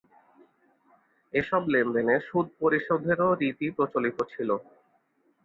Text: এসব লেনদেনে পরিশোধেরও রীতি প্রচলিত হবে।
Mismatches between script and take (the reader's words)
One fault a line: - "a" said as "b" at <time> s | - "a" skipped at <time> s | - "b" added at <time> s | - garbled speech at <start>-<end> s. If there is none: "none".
- "সুদ" added at 2.3 s
- "হবে" said as "ছিল" at 4.3 s